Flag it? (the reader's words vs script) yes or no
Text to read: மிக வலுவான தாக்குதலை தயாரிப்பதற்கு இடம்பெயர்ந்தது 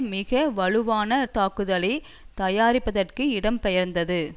no